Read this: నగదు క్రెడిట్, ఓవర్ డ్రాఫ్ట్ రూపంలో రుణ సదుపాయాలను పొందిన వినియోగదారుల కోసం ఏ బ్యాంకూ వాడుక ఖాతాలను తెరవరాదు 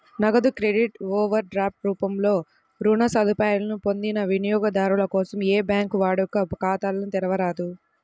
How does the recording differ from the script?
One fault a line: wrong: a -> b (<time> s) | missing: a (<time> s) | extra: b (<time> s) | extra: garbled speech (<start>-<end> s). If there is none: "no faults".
no faults